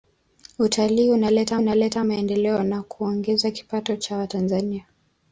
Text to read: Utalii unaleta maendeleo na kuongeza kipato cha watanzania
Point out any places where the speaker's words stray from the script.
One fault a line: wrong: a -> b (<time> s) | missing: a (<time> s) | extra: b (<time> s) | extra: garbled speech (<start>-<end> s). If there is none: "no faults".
extra: unaleta (1.6 s)